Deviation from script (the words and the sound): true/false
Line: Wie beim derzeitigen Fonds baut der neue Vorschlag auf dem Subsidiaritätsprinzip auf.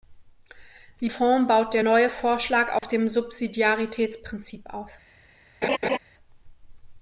true